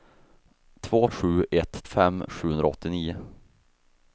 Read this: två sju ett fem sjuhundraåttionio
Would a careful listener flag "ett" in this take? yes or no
no